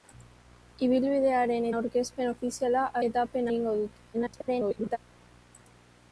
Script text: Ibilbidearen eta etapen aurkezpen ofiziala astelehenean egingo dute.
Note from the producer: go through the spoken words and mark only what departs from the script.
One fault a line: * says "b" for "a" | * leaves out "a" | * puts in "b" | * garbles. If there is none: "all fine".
* leaves out "eta etapen"
* says "etapen" for "astelehenean"
* garbles